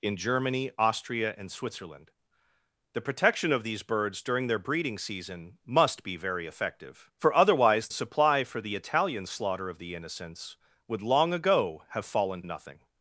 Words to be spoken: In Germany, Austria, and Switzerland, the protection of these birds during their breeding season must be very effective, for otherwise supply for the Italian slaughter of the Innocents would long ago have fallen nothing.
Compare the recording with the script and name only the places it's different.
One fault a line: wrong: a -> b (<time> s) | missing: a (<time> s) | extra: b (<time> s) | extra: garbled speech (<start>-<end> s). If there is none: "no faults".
no faults